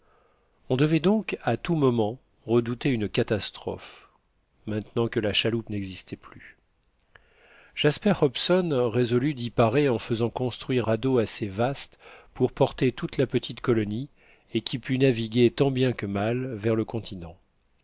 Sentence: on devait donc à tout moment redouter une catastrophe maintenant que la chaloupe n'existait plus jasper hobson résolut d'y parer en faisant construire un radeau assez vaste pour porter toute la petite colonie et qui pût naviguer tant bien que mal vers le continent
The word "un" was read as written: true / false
false